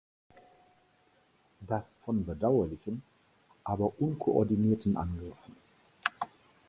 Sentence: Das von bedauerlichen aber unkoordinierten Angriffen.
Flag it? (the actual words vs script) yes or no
no